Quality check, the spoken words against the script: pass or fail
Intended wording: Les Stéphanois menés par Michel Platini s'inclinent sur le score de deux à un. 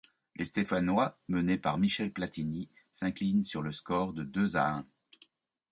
pass